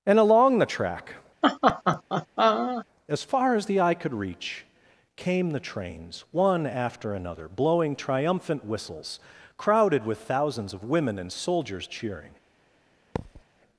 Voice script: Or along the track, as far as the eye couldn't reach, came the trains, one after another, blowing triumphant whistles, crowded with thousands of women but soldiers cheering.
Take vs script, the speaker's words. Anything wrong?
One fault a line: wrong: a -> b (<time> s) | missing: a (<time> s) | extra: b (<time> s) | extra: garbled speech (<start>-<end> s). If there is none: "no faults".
wrong: Or -> And (0.1 s)
wrong: couldn't -> could (3.9 s)
wrong: but -> and (11.2 s)